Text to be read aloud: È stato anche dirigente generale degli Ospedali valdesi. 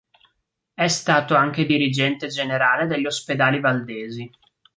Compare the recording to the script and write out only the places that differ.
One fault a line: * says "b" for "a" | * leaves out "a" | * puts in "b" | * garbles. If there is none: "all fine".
all fine